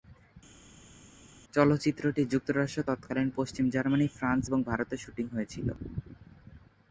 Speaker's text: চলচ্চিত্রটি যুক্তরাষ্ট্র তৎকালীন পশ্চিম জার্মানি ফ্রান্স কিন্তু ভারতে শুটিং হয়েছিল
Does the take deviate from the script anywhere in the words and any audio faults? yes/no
yes